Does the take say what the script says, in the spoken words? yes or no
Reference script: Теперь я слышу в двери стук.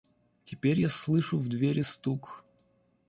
yes